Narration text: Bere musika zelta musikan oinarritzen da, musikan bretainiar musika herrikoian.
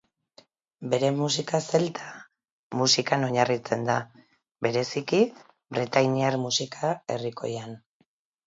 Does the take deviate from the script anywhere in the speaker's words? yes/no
yes